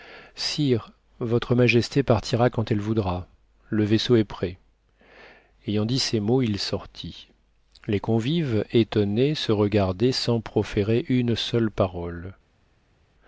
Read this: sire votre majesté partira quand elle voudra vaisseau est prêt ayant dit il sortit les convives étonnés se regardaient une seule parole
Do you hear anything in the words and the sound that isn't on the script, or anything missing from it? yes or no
yes